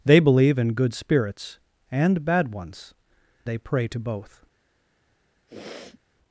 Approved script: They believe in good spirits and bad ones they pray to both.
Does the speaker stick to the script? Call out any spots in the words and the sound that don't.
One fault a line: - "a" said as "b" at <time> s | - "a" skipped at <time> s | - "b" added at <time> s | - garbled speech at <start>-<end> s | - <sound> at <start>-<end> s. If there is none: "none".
- sniff at 5.5-6.0 s